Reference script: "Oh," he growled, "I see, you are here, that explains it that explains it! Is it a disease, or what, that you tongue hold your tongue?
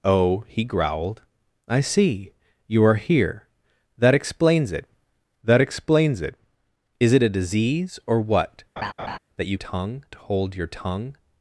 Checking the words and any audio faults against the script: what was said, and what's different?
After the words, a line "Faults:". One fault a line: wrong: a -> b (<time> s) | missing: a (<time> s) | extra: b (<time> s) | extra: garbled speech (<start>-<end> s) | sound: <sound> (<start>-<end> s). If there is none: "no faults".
"Oh," he growled, "I see, you are here, that explains it that explains it! Is it a disease, or what, that you tongue hold your tongue?
Faults:
sound: laugh (8.8-9.2 s)